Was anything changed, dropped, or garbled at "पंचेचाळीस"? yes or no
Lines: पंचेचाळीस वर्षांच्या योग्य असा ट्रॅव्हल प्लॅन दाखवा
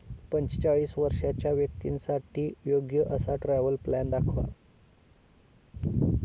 no